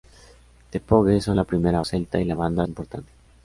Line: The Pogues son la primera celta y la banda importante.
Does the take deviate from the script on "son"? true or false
false